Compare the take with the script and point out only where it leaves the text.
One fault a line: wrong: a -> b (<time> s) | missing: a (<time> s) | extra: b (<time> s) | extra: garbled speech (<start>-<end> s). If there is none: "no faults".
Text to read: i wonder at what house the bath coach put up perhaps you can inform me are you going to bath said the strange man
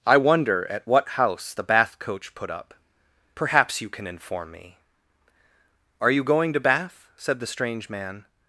no faults